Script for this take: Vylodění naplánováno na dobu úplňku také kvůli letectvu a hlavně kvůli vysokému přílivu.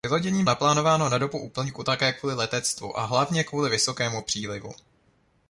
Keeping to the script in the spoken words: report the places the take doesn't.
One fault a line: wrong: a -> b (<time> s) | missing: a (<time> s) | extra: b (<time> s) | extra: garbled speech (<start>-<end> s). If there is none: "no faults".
no faults